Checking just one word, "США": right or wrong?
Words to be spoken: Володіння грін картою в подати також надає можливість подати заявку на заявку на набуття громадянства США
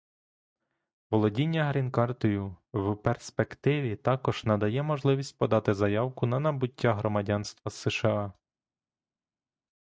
right